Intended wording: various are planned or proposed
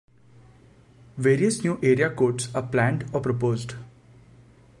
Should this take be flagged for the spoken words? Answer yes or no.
yes